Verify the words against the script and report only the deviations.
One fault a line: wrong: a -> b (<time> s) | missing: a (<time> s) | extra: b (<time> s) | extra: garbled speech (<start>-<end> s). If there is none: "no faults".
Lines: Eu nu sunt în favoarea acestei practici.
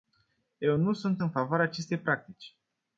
no faults